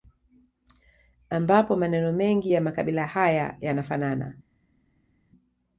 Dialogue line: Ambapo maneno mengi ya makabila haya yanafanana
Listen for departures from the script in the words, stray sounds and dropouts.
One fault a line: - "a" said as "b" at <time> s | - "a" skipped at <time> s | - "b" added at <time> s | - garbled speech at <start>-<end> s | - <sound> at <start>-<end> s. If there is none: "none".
none